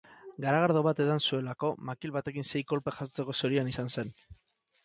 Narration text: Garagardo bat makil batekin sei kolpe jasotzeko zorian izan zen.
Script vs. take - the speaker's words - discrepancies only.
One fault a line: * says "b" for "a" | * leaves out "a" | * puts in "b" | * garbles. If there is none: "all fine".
* puts in "edan zuelako"